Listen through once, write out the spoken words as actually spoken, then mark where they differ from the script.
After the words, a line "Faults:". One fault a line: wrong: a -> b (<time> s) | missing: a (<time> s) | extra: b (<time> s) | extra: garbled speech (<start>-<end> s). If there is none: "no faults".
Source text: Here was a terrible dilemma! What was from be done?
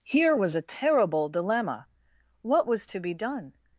Here was a terrible dilemma! What was to be done?
Faults:
wrong: from -> to (2.9 s)